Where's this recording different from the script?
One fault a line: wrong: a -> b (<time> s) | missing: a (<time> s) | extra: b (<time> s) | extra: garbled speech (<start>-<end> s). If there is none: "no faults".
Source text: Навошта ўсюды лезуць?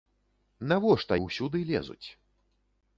no faults